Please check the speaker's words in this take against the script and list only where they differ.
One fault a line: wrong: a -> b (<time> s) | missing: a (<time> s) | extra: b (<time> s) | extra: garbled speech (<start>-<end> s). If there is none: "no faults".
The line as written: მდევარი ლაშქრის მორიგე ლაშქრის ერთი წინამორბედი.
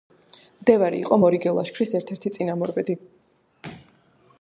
wrong: ლაშქრის -> იყო (1.0 s)
extra: ერთ (2.0 s)